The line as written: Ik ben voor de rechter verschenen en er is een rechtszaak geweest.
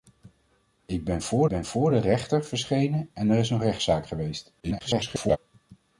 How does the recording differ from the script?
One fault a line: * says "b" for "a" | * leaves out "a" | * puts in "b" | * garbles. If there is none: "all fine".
* puts in "ben voor"
* garbles